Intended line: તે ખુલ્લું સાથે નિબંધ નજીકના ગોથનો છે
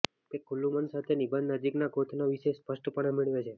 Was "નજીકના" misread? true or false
false